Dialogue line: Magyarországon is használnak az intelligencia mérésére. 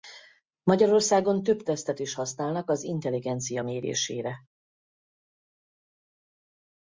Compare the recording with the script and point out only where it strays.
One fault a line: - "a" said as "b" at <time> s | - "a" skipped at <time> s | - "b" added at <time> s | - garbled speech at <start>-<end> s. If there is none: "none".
- "több tesztet" added at 1.4 s